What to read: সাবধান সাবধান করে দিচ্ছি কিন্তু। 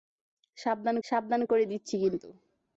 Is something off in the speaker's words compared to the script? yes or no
no